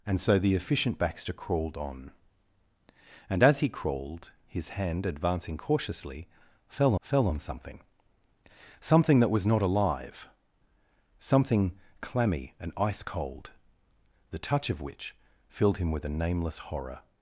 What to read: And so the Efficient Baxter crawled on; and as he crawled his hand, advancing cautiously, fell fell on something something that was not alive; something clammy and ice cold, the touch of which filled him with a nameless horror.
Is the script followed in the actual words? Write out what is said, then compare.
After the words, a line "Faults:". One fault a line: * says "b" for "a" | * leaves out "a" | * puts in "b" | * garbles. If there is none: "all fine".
And so the Efficient Baxter crawled on; and as he crawled his hand, advancing cautiously, fell fell on something something that was not alive; something clammy and ice cold, the touch of which filled him with a nameless horror.
Faults:
all fine